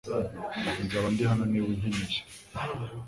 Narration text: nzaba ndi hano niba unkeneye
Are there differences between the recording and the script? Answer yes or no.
no